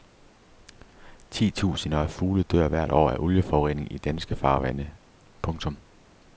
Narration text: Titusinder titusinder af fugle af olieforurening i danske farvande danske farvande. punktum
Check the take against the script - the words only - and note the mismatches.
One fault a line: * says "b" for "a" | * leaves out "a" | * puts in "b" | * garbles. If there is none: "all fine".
* leaves out "titusinder"
* puts in "dør hvert år"
* leaves out "danske farvande"